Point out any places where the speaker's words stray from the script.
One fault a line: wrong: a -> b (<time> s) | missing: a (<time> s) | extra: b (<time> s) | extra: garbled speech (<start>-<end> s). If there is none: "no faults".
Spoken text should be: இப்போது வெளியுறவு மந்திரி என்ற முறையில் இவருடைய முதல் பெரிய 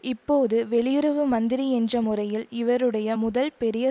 no faults